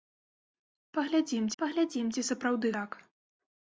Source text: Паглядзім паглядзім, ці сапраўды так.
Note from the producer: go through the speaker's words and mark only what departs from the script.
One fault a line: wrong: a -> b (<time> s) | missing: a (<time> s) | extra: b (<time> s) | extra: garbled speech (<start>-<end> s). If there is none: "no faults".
no faults